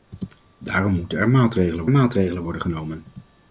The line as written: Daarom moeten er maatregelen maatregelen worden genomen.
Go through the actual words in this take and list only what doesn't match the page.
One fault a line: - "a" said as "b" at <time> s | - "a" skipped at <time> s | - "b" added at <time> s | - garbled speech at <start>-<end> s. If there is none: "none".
none